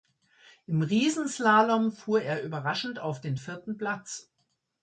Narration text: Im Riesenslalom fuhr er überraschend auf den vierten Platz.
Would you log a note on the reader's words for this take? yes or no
no